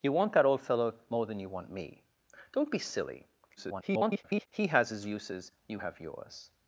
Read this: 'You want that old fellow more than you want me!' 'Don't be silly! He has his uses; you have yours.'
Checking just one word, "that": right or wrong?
right